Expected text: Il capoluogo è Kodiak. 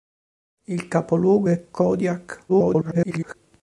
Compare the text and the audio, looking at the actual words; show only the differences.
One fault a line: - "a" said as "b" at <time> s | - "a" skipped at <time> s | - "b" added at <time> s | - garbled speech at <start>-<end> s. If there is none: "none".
- garbled speech at 2.5-3.3 s